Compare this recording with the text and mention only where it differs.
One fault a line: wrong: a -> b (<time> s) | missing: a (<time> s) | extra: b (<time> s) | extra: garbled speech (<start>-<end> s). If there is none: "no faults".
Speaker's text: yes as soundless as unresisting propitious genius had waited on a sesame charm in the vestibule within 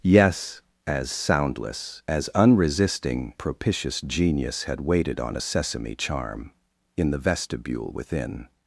no faults